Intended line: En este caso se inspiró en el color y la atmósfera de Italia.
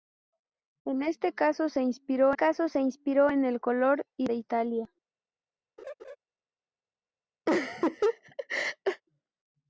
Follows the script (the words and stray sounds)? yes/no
no